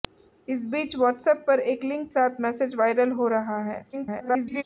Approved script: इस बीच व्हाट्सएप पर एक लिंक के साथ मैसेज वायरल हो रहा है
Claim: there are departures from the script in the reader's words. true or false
true